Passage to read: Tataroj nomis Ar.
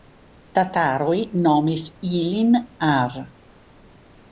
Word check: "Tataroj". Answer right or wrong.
right